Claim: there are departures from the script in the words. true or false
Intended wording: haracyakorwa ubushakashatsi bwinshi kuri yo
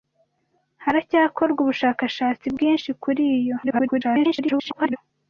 true